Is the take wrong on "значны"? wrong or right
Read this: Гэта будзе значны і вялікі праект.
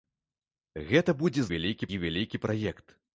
wrong